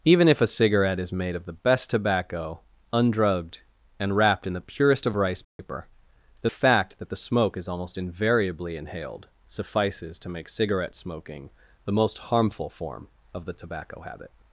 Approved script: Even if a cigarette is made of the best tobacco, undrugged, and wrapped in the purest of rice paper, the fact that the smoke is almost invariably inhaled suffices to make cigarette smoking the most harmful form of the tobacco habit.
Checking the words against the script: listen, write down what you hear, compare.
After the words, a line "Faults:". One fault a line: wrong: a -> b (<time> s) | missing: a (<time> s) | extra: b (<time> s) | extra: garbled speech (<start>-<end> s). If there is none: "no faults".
Even if a cigarette is made of the best tobacco, undrugged, and wrapped in the purest of rice paper, the fact that the smoke is almost invariably inhaled suffices to make cigarette smoking the most harmful form of the tobacco habit.
Faults:
no faults